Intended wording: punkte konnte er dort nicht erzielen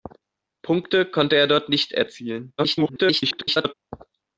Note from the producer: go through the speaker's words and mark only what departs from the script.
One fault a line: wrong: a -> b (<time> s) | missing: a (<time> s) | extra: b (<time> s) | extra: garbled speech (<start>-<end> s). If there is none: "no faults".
extra: garbled speech (2.6-3.7 s)